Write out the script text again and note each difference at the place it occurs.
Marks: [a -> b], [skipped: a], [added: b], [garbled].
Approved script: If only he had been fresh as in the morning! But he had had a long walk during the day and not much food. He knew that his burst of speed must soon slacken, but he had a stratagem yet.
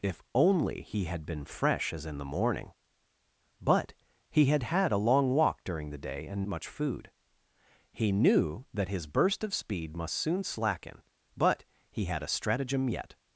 If only he had been fresh as in the morning! But he had had a long walk during the day and [skipped: not] much food. He knew that his burst of speed must soon slacken, but he had a stratagem yet.